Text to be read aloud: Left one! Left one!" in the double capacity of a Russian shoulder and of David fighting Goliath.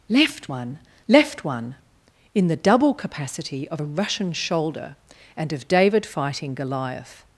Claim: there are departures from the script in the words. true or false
false